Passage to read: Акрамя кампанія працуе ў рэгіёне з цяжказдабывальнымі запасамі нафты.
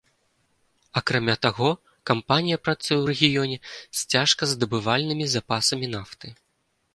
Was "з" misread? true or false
false